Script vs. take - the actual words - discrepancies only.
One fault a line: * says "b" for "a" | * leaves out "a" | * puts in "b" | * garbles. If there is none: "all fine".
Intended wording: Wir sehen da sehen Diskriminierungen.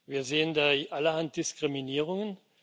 * says "allerhand" for "sehen"